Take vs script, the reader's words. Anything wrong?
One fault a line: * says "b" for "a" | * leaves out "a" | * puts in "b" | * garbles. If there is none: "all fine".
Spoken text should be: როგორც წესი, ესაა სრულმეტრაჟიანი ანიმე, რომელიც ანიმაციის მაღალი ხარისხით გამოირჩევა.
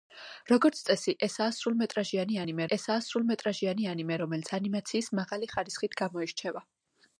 * puts in "ესაა სრულმეტრაჟიანი ანიმე"